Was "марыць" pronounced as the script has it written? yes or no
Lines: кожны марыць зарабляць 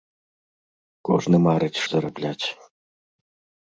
yes